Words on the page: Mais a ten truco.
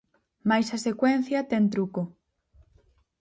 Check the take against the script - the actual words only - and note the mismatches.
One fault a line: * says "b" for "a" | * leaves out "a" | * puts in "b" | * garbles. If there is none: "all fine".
* puts in "secuencia"